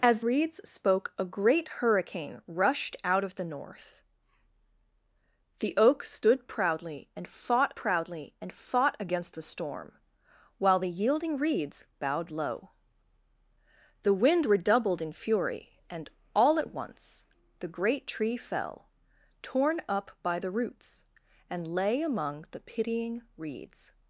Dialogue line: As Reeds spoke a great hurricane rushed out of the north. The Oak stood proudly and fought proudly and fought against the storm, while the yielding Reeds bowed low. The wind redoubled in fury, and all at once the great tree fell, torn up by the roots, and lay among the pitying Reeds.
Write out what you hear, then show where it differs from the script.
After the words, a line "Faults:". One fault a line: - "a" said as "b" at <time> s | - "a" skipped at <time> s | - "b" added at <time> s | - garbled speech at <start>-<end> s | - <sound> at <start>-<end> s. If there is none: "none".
As Reeds spoke a great hurricane rushed out of the north. The Oak stood proudly and fought proudly and fought against the storm, while the yielding Reeds bowed low. The wind redoubled in fury, and all at once the great tree fell, torn up by the roots, and lay among the pitying Reeds.
Faults:
none